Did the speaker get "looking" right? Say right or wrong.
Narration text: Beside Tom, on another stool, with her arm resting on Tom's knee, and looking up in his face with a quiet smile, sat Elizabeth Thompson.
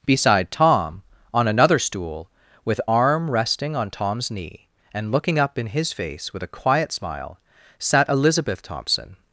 right